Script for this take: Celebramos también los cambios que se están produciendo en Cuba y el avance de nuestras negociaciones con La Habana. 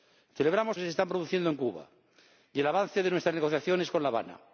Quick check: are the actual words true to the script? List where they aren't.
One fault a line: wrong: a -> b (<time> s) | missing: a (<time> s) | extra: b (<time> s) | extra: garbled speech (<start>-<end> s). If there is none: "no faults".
missing: también los cambios (0.8 s)